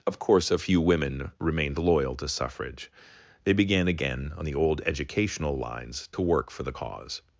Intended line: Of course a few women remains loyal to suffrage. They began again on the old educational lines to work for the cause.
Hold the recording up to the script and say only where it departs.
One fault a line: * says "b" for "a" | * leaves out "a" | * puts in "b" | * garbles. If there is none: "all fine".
* says "remained" for "remains"